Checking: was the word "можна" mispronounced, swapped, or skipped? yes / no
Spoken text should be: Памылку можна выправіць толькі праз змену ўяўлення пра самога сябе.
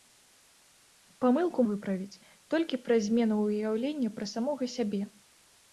yes